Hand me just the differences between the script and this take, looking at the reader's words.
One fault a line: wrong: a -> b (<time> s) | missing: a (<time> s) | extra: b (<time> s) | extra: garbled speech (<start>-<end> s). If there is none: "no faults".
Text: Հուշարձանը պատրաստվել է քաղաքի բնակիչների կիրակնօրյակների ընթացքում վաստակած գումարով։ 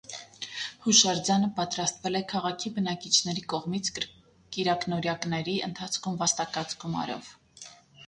extra: կողմից (3.5 s)